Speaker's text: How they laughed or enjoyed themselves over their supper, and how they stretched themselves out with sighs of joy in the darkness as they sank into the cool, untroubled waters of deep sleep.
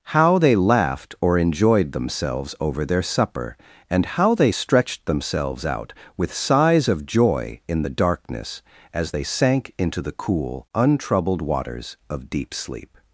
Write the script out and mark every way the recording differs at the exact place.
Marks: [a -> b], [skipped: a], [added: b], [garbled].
How they laughed or enjoyed themselves over their supper, and how they stretched themselves out with sighs of joy in the darkness as they sank into the cool, untroubled waters of deep sleep.